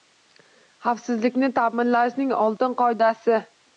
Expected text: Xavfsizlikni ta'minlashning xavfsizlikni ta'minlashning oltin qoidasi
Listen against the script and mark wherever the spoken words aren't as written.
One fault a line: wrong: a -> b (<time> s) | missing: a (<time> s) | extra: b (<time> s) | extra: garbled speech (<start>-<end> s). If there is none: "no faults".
missing: xavfsizlikni ta'minlashning (2.3 s)